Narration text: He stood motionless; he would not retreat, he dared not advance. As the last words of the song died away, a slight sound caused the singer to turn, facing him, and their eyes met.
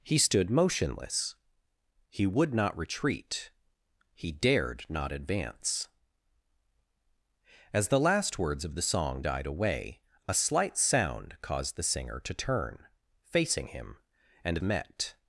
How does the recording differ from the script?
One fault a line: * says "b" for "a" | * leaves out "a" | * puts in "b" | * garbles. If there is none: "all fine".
* leaves out "their eyes"